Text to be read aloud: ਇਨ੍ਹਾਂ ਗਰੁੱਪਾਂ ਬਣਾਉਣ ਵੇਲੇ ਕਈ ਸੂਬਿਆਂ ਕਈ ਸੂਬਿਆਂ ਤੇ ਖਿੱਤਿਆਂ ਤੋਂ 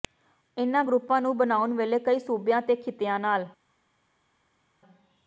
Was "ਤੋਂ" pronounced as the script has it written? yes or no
no